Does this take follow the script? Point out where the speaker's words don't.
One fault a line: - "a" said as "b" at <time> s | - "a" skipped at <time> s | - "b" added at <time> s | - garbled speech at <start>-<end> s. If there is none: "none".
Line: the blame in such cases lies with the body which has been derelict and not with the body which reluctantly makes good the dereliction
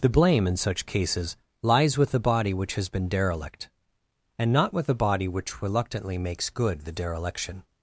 none